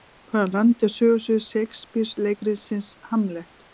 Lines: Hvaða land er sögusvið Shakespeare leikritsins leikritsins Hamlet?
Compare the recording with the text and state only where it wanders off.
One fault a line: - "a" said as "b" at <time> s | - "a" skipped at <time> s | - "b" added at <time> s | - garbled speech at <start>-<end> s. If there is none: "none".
- "leikritsins" skipped at 2.9 s